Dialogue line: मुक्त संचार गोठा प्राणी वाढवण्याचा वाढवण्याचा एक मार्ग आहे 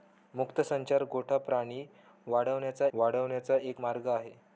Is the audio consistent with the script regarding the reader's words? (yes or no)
yes